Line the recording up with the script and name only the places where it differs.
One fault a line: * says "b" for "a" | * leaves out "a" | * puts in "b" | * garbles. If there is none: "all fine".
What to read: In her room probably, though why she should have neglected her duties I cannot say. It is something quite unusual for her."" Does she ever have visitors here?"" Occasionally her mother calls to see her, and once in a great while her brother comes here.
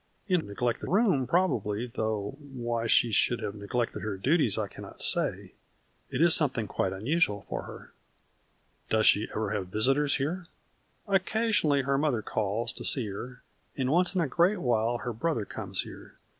* says "neglected" for "her"